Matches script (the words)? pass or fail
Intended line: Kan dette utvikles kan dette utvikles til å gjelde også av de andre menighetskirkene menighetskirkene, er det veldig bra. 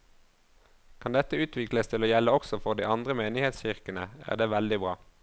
fail